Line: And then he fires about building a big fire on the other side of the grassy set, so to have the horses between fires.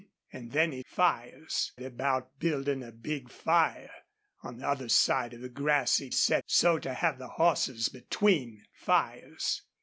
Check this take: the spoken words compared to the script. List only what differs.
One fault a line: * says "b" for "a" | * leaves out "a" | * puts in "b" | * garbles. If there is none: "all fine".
all fine